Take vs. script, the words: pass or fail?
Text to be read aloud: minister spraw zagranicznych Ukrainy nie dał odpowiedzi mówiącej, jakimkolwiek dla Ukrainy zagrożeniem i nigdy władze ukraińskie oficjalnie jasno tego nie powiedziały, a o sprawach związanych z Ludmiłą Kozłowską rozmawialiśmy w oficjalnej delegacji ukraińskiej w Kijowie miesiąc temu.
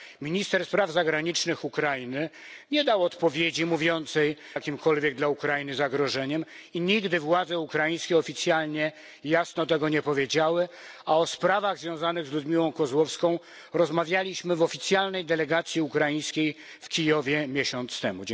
pass